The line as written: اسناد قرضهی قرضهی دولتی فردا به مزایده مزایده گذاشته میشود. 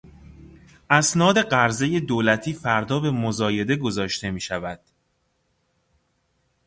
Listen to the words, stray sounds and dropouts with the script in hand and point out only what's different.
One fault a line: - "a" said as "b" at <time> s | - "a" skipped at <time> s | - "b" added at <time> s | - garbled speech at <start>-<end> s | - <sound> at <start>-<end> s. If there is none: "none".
- "قرضهی" skipped at 2.0 s
- "مزایده" skipped at 3.7 s